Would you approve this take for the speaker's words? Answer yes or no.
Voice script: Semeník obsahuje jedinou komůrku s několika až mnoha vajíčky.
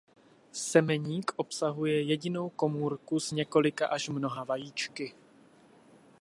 yes